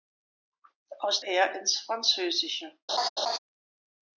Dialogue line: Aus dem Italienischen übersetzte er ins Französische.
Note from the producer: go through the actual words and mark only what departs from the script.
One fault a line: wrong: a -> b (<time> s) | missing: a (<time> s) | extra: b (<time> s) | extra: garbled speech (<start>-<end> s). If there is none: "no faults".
missing: dem Italienischen übersetzte (1.2 s)